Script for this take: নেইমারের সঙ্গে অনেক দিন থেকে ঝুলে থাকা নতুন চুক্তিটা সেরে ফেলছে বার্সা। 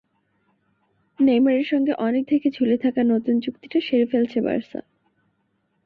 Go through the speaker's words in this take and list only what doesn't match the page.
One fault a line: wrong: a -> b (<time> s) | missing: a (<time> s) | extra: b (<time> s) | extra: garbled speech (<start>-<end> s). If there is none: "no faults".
missing: দিন (2.2 s)